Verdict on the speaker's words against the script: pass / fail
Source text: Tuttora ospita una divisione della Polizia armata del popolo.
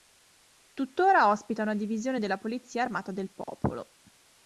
pass